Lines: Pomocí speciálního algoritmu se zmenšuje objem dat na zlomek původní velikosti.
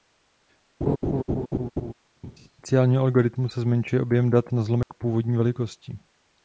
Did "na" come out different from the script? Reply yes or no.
no